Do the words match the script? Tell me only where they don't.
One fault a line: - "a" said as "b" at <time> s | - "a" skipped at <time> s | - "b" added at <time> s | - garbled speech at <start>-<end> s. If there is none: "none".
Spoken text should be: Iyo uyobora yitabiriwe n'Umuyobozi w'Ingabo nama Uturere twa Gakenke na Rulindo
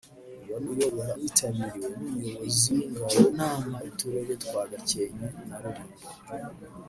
none